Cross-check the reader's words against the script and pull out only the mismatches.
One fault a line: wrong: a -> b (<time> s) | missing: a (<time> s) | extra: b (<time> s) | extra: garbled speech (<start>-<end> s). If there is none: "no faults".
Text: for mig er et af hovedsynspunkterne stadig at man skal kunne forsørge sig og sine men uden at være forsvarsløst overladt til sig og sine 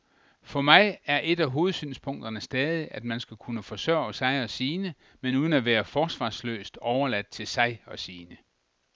no faults